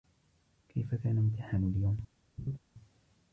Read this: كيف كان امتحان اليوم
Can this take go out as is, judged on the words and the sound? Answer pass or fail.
fail